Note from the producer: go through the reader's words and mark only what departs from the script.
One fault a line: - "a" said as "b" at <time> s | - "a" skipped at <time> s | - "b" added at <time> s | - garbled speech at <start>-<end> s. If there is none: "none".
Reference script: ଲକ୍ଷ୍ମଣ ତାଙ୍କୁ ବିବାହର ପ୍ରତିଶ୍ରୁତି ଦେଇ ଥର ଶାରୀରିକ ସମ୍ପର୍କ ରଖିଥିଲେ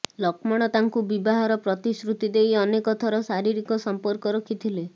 - "ଅନେକ" added at 2.6 s